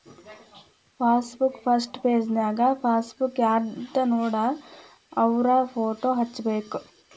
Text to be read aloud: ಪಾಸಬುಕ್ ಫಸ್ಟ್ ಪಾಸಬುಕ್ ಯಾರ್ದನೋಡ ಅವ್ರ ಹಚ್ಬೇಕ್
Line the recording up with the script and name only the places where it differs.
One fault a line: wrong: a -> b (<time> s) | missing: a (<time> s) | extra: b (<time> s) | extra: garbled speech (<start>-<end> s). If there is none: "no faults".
extra: ಪೆಜನ್ಯಾಗ (2.0 s)
extra: ಫೋಟೋ (5.7 s)